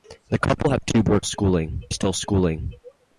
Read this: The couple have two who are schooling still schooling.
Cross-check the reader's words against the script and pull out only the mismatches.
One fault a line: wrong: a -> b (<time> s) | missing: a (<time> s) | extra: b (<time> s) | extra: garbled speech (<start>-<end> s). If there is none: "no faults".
no faults